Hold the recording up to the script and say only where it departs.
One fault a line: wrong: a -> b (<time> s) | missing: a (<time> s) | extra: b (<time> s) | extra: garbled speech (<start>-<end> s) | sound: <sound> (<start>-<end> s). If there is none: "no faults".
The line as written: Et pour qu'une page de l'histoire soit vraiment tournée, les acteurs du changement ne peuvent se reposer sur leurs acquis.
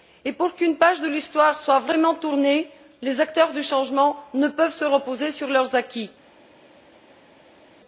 no faults